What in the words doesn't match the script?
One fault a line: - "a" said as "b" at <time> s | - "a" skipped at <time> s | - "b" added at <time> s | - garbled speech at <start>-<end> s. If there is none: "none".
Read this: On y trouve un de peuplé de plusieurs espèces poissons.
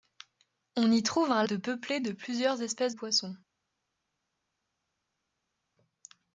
none